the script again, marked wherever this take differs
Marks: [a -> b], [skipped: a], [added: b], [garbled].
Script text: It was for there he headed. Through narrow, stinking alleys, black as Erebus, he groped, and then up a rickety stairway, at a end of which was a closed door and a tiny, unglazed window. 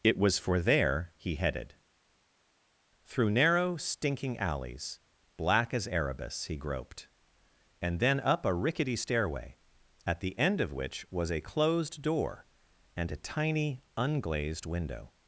It was for there he headed. Through narrow, stinking alleys, black as Erebus, he groped, and then up a rickety stairway, at [a -> the] end of which was a closed door and a tiny, unglazed window.